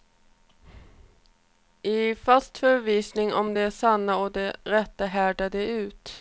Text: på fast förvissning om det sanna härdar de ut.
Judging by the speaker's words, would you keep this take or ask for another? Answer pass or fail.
fail